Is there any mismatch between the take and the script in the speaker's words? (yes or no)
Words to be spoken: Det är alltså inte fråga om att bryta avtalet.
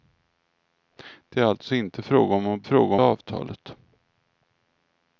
yes